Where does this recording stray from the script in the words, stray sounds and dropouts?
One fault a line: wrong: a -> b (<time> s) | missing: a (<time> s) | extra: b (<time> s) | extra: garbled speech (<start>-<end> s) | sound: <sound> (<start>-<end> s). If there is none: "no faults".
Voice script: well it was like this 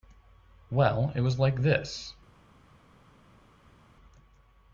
no faults